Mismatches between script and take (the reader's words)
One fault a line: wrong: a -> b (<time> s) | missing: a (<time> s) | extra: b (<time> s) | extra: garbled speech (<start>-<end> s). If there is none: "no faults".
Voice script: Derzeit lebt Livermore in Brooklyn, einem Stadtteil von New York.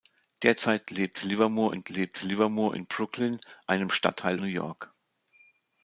extra: lebt Livermore in (1.9 s)
missing: von (4.4 s)